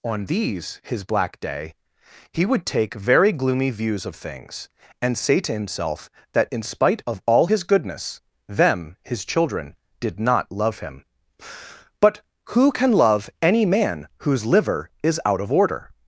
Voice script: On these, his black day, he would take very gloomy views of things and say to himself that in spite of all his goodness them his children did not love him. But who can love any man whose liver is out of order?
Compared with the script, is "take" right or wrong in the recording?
right